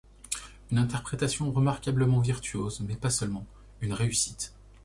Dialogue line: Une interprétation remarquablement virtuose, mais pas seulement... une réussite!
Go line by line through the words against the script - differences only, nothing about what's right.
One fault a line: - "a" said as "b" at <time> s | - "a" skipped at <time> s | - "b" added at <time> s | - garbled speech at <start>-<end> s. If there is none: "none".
none